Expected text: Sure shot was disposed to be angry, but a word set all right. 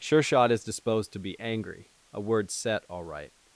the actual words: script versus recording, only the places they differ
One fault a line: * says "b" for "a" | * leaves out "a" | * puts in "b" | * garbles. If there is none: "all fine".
* says "is" for "was"
* leaves out "but"